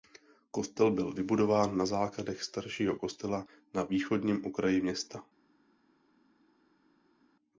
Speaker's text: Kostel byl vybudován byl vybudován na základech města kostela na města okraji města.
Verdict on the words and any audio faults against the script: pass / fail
fail